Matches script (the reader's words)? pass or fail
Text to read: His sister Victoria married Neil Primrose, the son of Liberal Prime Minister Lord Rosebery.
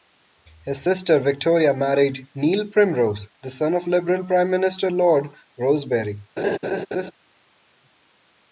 pass